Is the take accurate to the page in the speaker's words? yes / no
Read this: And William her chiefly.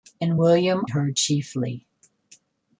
yes